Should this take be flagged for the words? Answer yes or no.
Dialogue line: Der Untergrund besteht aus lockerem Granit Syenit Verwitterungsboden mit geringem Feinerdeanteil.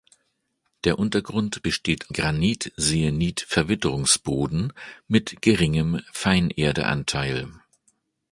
yes